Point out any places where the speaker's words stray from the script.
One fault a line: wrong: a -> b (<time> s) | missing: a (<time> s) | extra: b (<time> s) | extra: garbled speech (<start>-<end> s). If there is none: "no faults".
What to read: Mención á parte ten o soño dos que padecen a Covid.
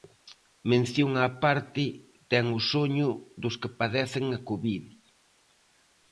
no faults